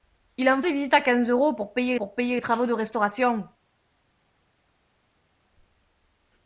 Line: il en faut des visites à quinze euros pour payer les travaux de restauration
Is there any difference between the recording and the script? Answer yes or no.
yes